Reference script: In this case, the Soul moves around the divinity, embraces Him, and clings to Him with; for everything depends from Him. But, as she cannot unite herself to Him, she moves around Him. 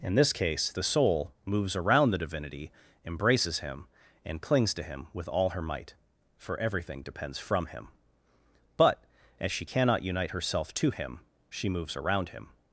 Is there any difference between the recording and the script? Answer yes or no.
yes